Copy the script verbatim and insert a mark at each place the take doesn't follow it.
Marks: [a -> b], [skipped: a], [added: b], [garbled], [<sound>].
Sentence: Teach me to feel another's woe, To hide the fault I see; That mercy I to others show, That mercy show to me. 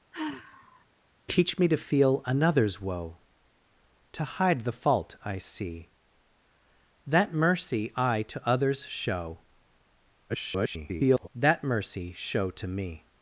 [sigh] Teach me to feel another's woe, To hide the fault I see; That mercy I to others show, [garbled] That mercy show to me.